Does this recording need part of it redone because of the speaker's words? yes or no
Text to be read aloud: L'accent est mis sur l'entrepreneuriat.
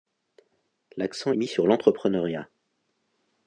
no